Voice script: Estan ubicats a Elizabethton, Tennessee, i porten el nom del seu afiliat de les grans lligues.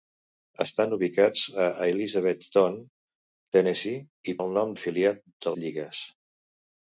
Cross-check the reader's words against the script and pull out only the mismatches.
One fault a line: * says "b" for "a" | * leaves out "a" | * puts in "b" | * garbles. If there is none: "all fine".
* leaves out "porten"
* leaves out "del seu"
* leaves out "les grans"